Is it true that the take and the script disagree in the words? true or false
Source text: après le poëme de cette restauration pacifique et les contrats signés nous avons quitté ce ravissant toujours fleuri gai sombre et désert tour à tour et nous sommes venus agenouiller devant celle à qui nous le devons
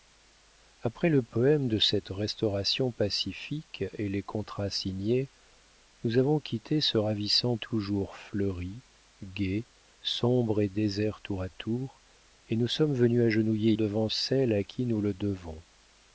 false